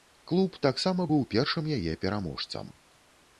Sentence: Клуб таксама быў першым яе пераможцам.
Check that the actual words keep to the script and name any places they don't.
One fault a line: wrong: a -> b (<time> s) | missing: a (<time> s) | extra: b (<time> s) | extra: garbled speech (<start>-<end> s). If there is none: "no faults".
no faults